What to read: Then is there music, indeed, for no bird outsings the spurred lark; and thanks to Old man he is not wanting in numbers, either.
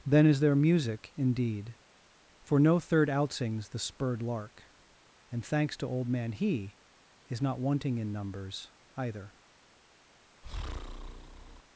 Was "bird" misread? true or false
true